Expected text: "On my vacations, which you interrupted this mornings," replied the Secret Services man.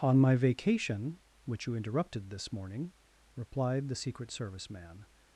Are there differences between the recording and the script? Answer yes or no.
yes